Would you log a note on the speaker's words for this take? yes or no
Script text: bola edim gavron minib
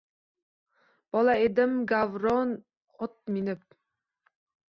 yes